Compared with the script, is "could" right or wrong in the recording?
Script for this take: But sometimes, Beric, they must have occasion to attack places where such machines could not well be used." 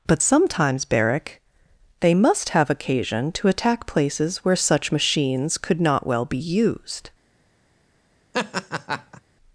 right